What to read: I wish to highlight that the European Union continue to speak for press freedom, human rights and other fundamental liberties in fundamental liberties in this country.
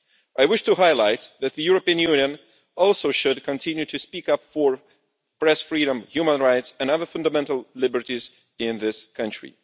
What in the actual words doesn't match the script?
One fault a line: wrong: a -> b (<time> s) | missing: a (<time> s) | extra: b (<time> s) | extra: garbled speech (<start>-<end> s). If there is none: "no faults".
extra: also should (2.8 s)
extra: up (4.3 s)
missing: fundamental liberties in (8.8 s)